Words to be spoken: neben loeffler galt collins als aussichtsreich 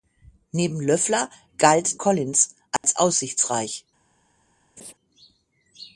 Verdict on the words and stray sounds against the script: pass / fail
fail